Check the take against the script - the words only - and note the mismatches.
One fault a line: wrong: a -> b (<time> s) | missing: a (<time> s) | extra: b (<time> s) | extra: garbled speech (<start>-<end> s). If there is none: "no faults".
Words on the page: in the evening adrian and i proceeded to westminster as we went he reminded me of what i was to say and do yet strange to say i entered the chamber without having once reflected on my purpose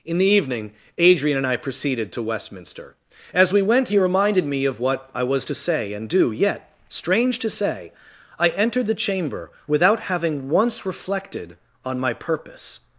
no faults